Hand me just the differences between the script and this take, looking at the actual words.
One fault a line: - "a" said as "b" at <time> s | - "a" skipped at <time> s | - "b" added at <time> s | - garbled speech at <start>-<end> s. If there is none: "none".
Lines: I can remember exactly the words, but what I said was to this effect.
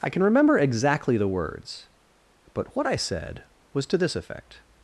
none